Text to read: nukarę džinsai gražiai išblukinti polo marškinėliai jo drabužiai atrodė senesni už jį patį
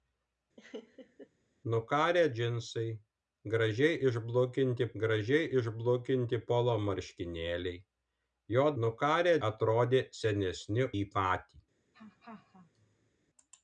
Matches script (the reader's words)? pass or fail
fail